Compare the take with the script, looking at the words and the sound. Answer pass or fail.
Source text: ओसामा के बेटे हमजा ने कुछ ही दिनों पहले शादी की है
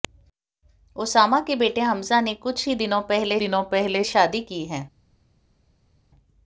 fail